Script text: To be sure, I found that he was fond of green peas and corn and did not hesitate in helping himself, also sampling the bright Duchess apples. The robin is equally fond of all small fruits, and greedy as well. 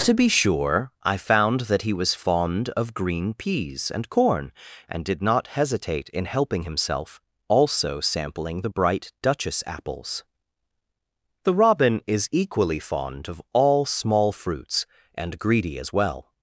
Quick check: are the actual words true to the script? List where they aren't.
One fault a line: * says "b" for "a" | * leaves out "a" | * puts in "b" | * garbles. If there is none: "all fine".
all fine